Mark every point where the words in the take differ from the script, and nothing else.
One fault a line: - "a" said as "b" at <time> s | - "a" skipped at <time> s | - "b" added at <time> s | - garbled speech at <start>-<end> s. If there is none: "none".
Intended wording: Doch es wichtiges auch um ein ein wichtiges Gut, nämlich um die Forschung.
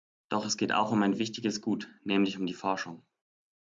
- "wichtiges" said as "geht" at 0.6 s
- "ein" skipped at 1.2 s